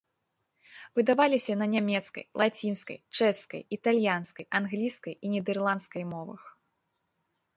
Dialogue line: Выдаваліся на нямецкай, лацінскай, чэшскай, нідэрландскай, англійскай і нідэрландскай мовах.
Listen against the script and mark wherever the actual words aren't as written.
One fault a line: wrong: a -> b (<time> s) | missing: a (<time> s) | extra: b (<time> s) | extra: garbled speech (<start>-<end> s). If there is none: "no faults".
wrong: нідэрландскай -> італьянскай (3.8 s)